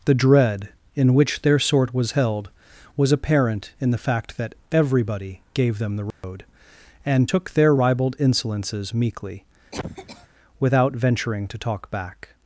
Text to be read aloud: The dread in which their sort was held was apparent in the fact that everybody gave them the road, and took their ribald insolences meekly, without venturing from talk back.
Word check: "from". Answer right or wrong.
wrong